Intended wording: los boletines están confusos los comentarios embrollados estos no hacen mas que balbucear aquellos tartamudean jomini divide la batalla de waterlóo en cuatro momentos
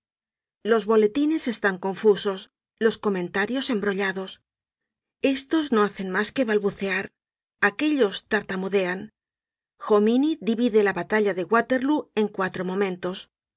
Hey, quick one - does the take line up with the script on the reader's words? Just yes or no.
yes